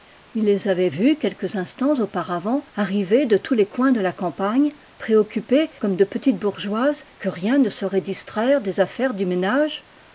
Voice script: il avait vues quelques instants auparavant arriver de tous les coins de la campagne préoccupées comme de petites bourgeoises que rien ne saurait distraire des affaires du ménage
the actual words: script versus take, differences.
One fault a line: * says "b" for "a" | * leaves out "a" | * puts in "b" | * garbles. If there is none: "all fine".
* puts in "les"